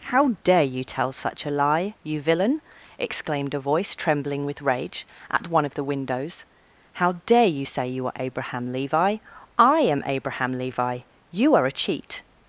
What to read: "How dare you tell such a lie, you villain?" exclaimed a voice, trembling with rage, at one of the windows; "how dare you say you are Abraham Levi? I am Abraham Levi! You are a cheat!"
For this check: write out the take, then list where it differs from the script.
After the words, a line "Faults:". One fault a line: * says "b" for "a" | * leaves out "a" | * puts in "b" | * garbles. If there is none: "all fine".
"How dare you tell such a lie, you villain?" exclaimed a voice, trembling with rage, at one of the windows; "how dare you say you are Abraham Levi? I am Abraham Levi! You are a cheat!"
Faults:
all fine